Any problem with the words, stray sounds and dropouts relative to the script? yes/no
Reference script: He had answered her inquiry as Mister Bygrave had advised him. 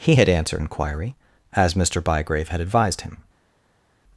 yes